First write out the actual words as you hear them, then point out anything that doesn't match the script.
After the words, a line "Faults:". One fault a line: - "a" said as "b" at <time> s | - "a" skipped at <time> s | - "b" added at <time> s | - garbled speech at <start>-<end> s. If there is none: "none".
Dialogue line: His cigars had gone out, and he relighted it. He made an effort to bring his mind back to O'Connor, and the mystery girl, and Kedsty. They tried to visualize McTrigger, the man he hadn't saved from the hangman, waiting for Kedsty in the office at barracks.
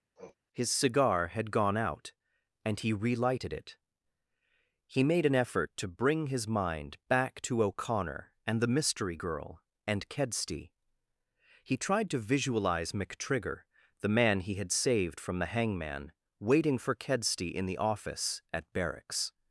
His cigar had gone out, and he relighted it. He made an effort to bring his mind back to O'Connor, and the mystery girl, and Kedsty. He tried to visualize McTrigger, the man he had saved from the hangman, waiting for Kedsty in the office at barracks.
Faults:
- "cigars" said as "cigar" at 0.7 s
- "They" said as "He" at 11.6 s
- "hadn't" said as "had" at 14.5 s